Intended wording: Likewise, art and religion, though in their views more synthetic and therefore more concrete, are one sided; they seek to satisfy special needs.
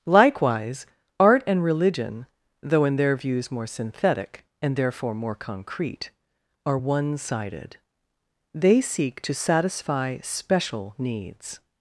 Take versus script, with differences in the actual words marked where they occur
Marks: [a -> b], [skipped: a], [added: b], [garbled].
Likewise, art and religion, though in their views more synthetic and therefore more concrete, are one sided; they seek to satisfy special needs.